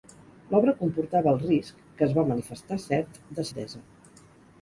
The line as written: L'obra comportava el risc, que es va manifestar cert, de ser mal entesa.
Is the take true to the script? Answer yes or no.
no